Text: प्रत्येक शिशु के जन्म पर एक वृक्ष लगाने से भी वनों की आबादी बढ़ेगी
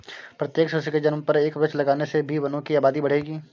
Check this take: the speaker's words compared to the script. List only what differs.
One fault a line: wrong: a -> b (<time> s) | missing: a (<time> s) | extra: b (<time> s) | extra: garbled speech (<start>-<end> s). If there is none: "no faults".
no faults